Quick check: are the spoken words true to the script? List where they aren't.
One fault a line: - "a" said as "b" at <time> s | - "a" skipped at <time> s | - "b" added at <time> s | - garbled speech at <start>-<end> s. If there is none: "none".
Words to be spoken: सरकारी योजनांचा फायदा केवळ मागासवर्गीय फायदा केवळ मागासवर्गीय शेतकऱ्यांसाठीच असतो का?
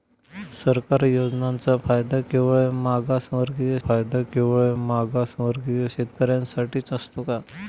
none